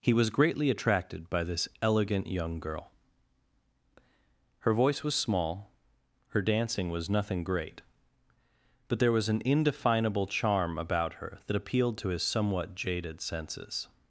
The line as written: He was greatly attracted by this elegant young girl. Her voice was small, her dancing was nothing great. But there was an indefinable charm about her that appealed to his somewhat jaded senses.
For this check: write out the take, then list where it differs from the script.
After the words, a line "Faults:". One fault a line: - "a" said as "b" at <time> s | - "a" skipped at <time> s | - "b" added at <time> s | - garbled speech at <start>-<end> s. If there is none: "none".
He was greatly attracted by this elegant young girl. Her voice was small, her dancing was nothing great. But there was an indefinable charm about her that appealed to his somewhat jaded senses.
Faults:
none